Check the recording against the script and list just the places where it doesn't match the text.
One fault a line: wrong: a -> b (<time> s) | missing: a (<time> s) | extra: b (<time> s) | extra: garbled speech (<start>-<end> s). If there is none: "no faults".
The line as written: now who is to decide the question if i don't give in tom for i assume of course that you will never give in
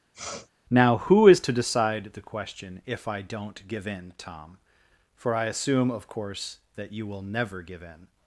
no faults